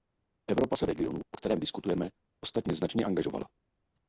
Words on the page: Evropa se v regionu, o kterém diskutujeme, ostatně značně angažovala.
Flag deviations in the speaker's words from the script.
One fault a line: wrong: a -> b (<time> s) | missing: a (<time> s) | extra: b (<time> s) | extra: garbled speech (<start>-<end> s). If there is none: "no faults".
no faults